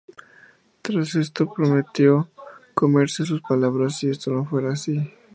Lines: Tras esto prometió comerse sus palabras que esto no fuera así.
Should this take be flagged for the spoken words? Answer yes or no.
yes